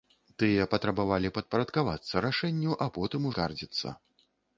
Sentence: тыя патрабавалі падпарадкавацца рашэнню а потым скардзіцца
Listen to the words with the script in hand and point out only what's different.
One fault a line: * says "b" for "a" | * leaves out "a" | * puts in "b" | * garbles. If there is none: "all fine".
all fine